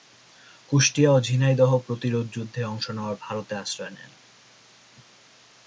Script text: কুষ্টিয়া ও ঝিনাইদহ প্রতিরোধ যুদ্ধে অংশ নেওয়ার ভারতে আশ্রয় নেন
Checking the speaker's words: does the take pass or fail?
pass